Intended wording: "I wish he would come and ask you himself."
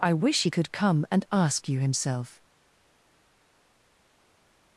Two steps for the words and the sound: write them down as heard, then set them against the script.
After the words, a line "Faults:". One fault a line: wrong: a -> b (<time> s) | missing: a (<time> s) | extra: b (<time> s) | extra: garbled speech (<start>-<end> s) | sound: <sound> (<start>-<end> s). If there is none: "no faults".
"I wish he could come and ask you himself."
Faults:
wrong: would -> could (0.5 s)